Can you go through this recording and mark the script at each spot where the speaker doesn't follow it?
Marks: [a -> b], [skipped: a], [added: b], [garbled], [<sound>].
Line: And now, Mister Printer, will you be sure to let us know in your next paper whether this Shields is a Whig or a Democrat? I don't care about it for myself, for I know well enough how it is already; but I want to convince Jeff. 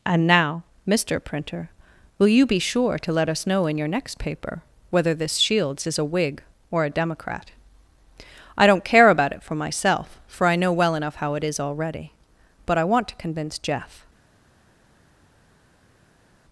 And now, Mister Printer, will you be sure to let us know in your next paper whether this Shields is a Whig or a Democrat? I don't care about it for myself, for I know well enough how it is already; but I want to convince Jeff.